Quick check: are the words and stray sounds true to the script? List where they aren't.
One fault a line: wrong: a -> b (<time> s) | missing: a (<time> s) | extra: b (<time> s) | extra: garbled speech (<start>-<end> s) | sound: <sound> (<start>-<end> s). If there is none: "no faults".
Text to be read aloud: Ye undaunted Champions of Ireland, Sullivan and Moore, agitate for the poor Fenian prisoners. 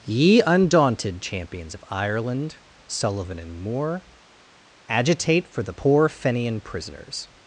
no faults